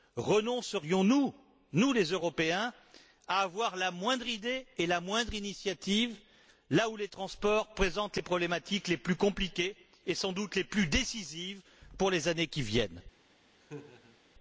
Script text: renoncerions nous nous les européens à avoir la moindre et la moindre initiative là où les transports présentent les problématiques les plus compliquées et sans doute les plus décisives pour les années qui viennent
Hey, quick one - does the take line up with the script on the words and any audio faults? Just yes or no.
no